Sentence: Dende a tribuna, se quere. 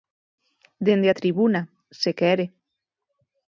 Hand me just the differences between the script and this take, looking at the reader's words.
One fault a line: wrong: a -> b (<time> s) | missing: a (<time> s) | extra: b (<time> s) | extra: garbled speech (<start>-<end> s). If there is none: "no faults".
no faults